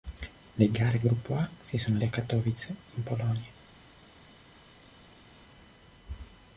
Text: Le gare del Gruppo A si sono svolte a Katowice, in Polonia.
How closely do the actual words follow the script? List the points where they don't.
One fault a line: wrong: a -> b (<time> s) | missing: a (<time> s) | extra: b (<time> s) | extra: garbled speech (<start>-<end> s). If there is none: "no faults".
missing: del (1.0 s)
missing: svolte (2.0 s)